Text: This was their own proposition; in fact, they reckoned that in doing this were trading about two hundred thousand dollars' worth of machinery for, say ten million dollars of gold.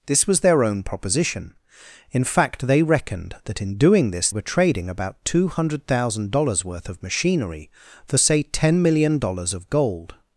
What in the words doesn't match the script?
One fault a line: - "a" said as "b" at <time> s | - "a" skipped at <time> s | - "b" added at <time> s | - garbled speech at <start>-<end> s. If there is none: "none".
none